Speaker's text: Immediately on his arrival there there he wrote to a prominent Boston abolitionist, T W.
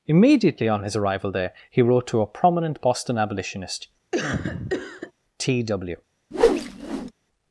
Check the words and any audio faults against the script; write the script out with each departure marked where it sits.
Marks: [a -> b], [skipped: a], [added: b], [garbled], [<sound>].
Immediately on his arrival there [skipped: there] he wrote to a prominent Boston abolitionist, [cough] T W. [whoosh]